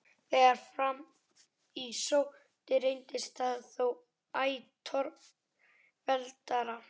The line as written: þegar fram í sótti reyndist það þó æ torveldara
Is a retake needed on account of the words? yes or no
no